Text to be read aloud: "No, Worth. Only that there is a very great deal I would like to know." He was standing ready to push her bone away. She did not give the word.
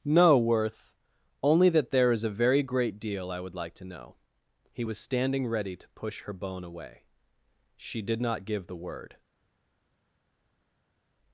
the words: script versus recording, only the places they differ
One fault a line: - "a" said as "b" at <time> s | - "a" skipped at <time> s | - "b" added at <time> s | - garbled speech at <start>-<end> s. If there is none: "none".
none